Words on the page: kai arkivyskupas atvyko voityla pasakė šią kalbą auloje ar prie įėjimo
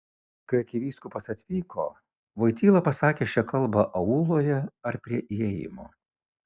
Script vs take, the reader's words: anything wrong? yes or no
no